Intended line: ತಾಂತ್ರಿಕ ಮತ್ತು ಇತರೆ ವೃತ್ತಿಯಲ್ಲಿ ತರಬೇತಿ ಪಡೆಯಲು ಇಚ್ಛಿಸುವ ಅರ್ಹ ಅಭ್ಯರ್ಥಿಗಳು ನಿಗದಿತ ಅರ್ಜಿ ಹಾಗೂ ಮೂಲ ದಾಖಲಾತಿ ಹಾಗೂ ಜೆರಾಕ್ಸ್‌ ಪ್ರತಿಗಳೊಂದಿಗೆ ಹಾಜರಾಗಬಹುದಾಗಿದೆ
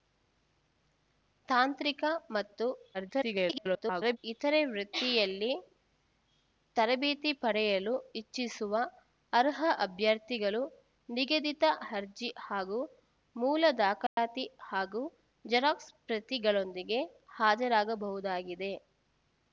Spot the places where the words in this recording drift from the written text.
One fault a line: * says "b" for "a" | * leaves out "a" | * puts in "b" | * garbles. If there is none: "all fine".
* garbles